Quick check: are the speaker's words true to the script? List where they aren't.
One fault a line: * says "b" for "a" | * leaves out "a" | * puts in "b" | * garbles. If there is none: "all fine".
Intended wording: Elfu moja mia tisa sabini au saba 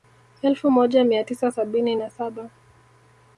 * says "na" for "au"